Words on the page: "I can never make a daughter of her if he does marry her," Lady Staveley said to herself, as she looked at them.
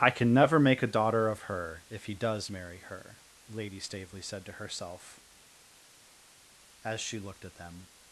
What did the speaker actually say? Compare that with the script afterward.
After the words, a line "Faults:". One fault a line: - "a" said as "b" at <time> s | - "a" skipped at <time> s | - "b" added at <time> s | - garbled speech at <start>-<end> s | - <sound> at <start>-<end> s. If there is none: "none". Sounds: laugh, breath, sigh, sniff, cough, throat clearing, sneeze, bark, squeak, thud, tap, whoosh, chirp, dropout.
"I can never make a daughter of her if he does marry her," Lady Staveley said to herself, as she looked at them.
Faults:
none